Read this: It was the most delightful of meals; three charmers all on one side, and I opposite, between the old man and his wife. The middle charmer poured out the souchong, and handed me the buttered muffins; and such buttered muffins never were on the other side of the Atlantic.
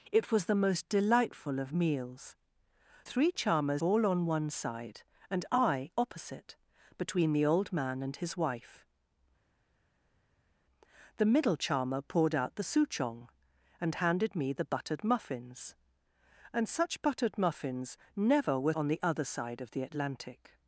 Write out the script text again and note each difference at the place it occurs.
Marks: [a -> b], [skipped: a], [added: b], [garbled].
It was the most delightful of meals; three charmers all on one side, and I opposite, between the old man and his wife. The middle charmer poured out the souchong, and handed me the buttered muffins; and such buttered muffins never were on the other side of the Atlantic.